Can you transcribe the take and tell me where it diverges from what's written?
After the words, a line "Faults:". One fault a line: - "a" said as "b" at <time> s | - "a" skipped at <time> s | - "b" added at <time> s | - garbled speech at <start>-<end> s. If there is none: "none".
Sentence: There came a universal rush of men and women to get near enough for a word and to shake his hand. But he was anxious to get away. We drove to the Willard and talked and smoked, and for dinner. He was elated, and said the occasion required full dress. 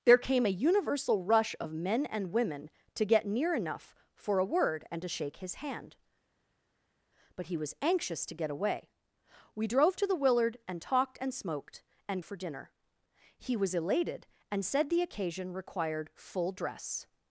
There came a universal rush of men and women to get near enough for a word and to shake his hand. But he was anxious to get away. We drove to the Willard and talked and smoked, and for dinner. He was elated, and said the occasion required full dress.
Faults:
none